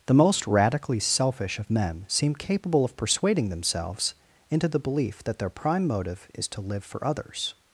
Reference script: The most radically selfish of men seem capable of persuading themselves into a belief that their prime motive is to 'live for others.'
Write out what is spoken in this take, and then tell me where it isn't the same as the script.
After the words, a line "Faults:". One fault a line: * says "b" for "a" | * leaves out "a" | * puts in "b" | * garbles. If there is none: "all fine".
The most radically selfish of men seem capable of persuading themselves into the belief that their prime motive is to 'live for others.'
Faults:
* says "the" for "a"